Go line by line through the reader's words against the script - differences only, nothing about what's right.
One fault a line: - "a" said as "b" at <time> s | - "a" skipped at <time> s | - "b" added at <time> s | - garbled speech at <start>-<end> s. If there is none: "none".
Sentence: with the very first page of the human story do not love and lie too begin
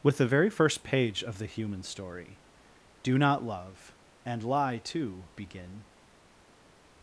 none